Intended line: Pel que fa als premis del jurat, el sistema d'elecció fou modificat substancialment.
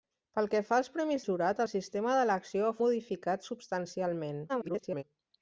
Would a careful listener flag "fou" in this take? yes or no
yes